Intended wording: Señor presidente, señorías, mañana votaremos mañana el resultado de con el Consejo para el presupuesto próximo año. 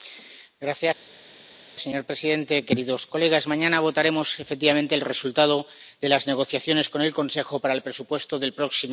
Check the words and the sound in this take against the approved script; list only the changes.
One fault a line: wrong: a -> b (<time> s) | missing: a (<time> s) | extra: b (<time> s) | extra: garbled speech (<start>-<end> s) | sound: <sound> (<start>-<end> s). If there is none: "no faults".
wrong: mañana -> efectivamente (4.4 s)
extra: las negociaciones (6.1 s)
extra: del (8.4 s)